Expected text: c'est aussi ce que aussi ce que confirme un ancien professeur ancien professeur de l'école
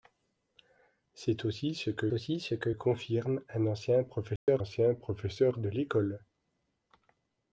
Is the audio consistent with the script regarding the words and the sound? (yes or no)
no